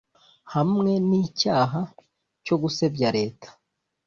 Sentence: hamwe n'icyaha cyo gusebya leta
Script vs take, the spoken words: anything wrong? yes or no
no